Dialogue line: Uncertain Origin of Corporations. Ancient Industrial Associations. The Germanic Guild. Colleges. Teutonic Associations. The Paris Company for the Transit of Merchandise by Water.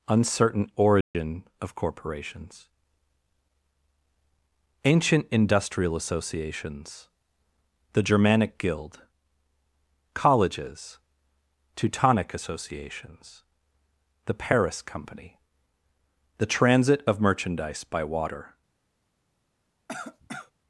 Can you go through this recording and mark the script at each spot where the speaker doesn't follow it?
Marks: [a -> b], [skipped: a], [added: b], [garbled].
Uncertain Origin of Corporations. Ancient Industrial Associations. The Germanic Guild. Colleges. Teutonic Associations. The Paris Company [skipped: for] the Transit of Merchandise by Water.